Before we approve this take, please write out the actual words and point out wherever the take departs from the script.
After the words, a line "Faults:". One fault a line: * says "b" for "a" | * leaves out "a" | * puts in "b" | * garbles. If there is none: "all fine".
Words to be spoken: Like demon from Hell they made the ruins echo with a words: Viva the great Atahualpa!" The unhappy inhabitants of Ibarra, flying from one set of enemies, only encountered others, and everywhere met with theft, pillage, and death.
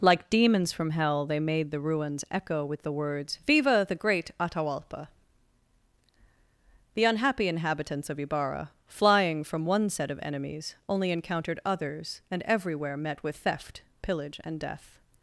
Like demons from Hell they made the ruins echo with the words: Viva the great Atahualpa!" The unhappy inhabitants of Ibarra, flying from one set of enemies, only encountered others, and everywhere met with theft, pillage, and death.
Faults:
* says "demons" for "demon"
* says "the" for "a"